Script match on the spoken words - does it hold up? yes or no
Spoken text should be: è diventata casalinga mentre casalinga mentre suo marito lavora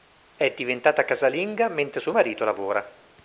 no